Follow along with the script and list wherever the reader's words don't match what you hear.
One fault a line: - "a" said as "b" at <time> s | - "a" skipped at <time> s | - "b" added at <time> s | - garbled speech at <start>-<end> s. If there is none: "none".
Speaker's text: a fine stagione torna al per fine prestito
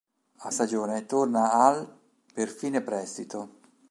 - "fine" skipped at 0.5 s